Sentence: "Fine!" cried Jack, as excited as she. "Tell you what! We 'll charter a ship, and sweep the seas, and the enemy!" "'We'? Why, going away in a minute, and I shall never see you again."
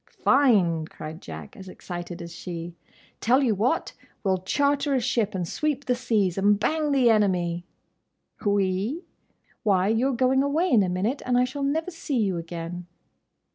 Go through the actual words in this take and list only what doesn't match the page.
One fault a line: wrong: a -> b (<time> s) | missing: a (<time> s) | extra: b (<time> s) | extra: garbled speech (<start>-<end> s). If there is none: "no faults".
extra: bang (6.6 s)
extra: you're (9.9 s)